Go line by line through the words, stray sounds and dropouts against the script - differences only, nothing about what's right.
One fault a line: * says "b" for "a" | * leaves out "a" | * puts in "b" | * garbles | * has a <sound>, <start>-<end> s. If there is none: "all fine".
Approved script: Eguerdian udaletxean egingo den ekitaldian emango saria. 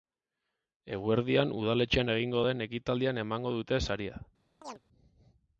* puts in "dute"
* has a chirp, 4.6-4.8 s